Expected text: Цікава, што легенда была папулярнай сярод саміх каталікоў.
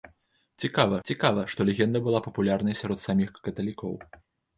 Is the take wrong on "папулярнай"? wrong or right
right